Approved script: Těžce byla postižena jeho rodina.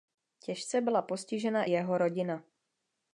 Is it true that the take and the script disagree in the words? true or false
false